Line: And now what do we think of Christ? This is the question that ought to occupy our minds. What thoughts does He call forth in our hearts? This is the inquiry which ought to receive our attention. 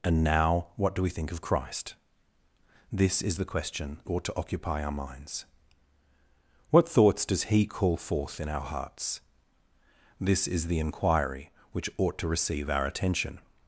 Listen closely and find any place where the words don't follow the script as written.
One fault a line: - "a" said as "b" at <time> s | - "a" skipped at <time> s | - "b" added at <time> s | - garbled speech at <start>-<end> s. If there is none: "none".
- "that" skipped at 4.0 s